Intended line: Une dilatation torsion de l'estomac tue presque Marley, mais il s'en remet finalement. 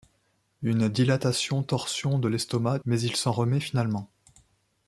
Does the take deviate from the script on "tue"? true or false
true